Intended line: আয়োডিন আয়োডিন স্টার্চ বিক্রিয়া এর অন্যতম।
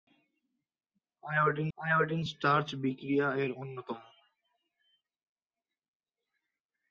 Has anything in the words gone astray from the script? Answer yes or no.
no